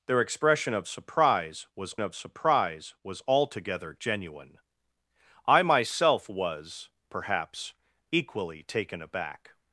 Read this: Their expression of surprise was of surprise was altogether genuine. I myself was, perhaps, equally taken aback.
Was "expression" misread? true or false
false